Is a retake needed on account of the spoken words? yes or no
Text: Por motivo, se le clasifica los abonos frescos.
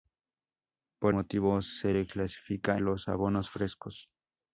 no